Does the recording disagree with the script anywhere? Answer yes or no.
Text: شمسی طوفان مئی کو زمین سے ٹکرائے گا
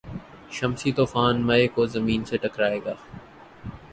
no